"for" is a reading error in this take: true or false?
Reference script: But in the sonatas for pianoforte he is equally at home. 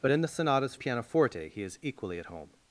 true